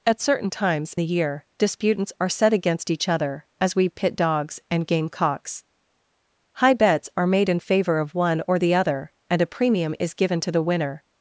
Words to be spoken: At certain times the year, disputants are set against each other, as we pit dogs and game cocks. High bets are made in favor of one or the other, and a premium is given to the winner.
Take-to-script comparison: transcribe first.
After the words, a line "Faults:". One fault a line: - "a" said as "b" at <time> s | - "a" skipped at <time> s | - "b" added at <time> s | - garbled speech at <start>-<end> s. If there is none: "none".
At certain times the year, disputants are set against each other, as we pit dogs and game cocks. High bets are made in favor of one or the other, and a premium is given to the winner.
Faults:
none